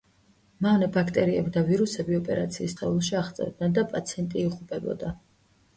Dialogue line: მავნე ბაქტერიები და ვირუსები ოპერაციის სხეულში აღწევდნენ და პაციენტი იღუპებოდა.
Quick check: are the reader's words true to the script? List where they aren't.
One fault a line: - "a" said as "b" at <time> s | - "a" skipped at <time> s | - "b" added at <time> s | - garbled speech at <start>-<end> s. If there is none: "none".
none